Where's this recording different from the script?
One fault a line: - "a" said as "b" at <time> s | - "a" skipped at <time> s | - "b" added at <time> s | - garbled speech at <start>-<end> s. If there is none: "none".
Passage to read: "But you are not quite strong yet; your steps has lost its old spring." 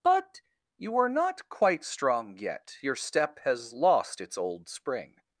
- "steps" said as "step" at 3.0 s